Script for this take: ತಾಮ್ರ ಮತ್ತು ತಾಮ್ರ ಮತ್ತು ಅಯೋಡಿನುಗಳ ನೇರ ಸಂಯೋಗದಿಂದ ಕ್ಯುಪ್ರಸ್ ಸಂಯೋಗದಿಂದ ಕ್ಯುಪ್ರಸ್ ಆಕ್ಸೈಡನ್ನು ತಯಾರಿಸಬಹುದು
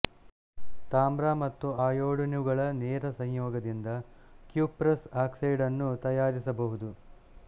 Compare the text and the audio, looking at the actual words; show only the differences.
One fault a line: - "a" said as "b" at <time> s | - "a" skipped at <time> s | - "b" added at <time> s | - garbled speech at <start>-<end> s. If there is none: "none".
- "ತಾಮ್ರ ಮತ್ತು" skipped at 1.7 s
- "ಸಂಯೋಗದಿಂದ ಕ್ಯುಪ್ರಸ್" skipped at 5.1 s